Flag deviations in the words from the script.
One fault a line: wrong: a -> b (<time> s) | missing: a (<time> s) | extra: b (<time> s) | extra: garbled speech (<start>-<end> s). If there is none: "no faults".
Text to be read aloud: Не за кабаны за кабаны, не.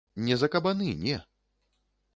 missing: за кабаны (0.9 s)